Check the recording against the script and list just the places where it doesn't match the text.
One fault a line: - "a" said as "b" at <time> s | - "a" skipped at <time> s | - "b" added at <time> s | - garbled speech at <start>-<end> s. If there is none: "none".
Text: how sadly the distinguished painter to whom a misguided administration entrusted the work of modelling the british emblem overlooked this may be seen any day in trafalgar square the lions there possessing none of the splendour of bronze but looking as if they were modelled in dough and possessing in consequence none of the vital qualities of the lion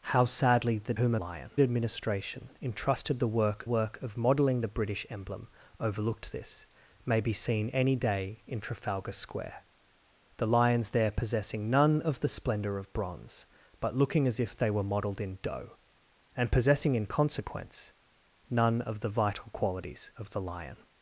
- "distinguished painter to" skipped at 0.9 s
- "misguided" said as "lion" at 1.1 s
- "work" added at 3.6 s